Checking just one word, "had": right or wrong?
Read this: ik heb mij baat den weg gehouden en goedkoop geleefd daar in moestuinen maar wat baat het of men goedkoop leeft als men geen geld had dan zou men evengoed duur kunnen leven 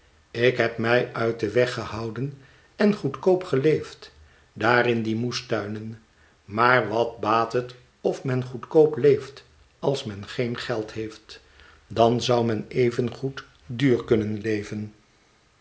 wrong